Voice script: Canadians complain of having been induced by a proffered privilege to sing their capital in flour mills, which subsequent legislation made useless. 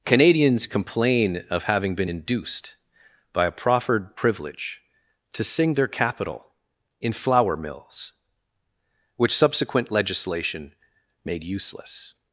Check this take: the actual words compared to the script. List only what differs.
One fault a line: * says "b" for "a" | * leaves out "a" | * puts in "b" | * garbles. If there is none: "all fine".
all fine